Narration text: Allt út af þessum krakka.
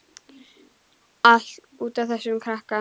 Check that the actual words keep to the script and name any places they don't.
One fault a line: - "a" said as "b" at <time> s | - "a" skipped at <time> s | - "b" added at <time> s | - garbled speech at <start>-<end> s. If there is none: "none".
none